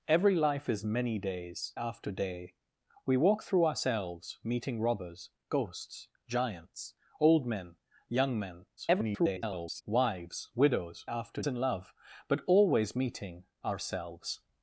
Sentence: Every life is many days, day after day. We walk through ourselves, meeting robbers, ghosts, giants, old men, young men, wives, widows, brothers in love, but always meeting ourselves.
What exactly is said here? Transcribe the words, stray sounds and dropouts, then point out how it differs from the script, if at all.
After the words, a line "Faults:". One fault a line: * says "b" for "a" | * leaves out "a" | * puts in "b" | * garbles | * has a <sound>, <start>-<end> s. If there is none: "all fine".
Every life is many days, after day. We walk through ourselves, meeting robbers, ghosts, giants, old men, young men, [garbled] wives, widows, after in love, but always meeting ourselves.
Faults:
* leaves out "day"
* garbles
* says "after" for "brothers"